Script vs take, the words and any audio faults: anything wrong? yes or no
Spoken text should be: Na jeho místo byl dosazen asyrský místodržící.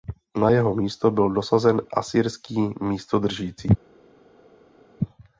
no